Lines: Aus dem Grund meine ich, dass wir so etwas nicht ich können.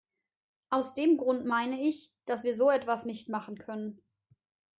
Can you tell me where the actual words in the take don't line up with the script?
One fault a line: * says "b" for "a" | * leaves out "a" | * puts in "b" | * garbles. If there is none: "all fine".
* says "machen" for "ich"